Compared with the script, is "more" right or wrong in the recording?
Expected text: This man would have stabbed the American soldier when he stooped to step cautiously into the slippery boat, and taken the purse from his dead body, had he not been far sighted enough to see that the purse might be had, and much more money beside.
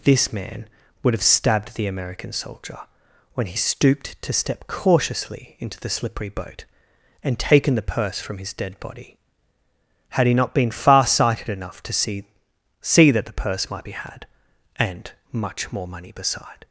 right